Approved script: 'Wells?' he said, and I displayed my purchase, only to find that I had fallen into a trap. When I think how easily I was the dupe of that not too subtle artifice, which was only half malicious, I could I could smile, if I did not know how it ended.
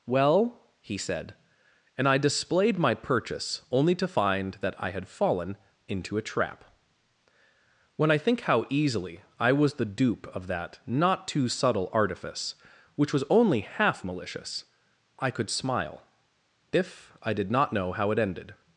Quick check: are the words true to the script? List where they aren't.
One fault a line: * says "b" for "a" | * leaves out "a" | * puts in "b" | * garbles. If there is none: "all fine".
* says "Well" for "Wells"
* leaves out "I could"